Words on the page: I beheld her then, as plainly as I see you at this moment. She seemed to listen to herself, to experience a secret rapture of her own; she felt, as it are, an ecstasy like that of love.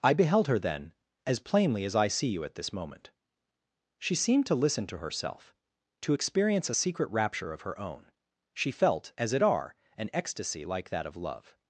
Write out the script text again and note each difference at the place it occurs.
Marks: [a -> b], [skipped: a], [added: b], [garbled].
I beheld her then, as plainly as I see you at this moment. She seemed to listen to herself, to experience a secret rapture of her own; she felt, as it are, an ecstasy like that of love.